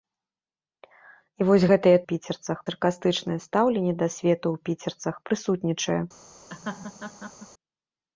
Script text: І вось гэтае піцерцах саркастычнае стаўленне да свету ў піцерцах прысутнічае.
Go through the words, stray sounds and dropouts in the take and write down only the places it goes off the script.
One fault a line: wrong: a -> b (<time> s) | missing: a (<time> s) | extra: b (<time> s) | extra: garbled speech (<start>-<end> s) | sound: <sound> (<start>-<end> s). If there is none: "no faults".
sound: laugh (6.5-7.5 s)